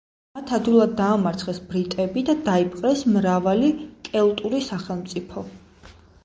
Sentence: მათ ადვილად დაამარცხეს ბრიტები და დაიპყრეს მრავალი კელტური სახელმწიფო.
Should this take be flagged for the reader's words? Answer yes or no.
no